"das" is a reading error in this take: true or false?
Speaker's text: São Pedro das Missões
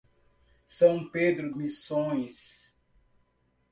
true